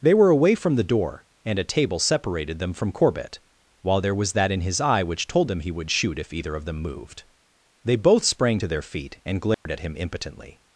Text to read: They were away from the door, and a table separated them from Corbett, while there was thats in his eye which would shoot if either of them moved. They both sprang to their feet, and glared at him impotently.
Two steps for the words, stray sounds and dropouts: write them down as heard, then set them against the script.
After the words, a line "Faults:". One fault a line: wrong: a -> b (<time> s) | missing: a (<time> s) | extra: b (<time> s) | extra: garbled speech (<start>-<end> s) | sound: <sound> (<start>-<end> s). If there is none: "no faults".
They were away from the door, and a table separated them from Corbett, while there was that in his eye which told them he would shoot if either of them moved. They both sprang to their feet, and glared at him impotently.
Faults:
wrong: thats -> that (4.3 s)
extra: told them he (5.3 s)
sound: dropout (9.5-9.7 s)